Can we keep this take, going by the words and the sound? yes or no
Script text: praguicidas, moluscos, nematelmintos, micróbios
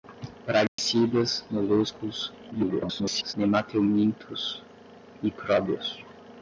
no